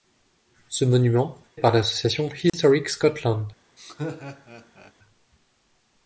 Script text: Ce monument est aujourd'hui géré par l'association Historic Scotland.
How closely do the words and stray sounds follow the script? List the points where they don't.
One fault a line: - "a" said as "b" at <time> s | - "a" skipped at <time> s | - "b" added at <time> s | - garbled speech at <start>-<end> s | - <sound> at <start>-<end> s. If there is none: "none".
- "est aujourd'hui géré" skipped at 1.4 s
- dropout at 2.5-2.5 s
- laugh at 3.8-4.9 s